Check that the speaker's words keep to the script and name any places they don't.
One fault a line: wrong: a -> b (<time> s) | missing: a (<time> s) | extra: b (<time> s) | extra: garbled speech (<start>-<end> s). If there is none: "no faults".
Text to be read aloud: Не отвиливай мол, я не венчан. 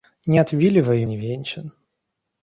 missing: мол я (1.1 s)